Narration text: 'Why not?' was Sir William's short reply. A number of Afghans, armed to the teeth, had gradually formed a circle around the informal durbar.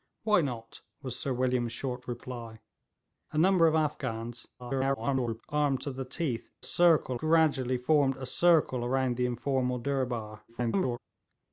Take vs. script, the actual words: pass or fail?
fail